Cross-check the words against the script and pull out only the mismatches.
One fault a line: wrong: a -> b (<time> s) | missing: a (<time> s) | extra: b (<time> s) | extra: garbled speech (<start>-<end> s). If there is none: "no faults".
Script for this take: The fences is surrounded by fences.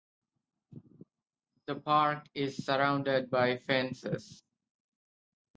wrong: fences -> park (1.8 s)